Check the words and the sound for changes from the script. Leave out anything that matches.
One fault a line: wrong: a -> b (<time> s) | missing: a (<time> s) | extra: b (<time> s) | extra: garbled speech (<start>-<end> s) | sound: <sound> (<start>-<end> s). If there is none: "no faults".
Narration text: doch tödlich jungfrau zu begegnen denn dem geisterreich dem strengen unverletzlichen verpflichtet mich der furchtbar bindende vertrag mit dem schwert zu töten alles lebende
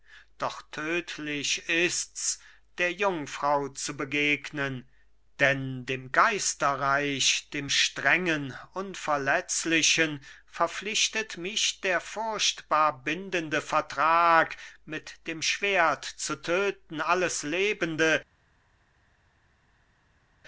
extra: ists der (1.7 s)